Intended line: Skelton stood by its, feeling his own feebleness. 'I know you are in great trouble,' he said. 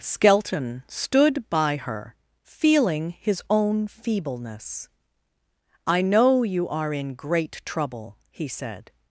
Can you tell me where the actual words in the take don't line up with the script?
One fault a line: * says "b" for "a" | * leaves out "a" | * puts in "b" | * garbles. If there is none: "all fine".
* says "her" for "its"